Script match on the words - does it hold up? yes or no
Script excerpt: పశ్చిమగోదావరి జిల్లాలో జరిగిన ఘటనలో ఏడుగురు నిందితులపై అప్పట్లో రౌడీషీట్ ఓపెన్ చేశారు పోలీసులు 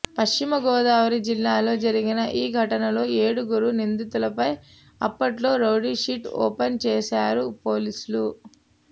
no